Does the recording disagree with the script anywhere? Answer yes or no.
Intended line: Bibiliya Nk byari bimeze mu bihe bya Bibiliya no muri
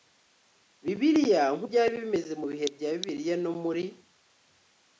no